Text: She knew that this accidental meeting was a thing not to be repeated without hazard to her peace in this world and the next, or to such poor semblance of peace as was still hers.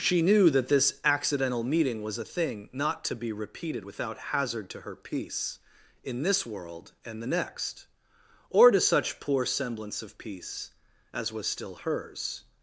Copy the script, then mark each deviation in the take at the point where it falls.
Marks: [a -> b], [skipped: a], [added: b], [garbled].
She knew that this accidental meeting was a thing not to be repeated without hazard to her peace in this world and the next, or to such poor semblance of peace as was still hers.